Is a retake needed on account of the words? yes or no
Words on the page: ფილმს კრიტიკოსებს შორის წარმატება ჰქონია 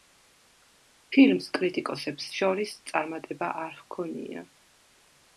yes